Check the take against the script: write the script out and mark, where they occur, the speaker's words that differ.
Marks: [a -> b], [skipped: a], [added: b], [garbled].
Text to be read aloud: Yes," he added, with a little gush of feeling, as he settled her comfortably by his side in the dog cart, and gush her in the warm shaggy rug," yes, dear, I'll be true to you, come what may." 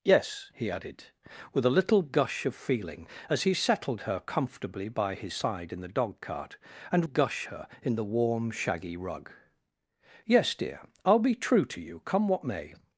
Yes," he added, with a little gush of feeling, as he settled her comfortably by his side in the dog cart, and gush her in the warm shaggy rug," yes, dear, I'll be true to you, come what may."